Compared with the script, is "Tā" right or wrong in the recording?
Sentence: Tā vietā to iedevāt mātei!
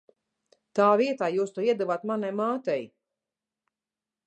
right